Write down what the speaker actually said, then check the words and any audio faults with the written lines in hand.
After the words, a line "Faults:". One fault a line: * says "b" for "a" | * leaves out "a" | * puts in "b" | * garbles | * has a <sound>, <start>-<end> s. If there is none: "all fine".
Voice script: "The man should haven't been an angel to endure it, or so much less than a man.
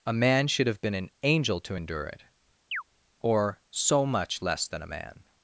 "A man should have been an angel to endure it, or so much less than a man.
Faults:
* says "A" for "The"
* says "have" for "haven't"
* has a chirp, 2.7-2.8 s